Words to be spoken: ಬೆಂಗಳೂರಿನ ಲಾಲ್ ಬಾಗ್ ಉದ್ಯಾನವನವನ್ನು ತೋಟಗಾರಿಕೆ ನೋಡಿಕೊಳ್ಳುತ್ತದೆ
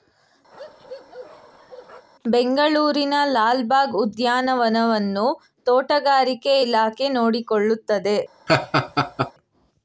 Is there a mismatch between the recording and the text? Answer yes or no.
yes